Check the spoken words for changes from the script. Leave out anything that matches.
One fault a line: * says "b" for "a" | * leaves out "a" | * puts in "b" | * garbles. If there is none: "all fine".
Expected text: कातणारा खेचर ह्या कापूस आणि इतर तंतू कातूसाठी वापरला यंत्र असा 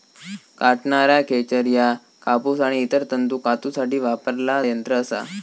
all fine